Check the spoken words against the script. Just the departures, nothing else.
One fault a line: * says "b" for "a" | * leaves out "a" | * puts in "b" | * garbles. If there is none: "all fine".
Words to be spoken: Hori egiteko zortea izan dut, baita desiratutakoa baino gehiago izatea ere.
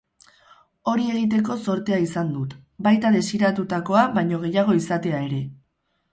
all fine